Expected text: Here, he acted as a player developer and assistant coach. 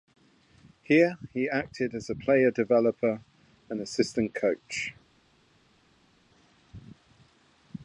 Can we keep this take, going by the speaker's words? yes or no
yes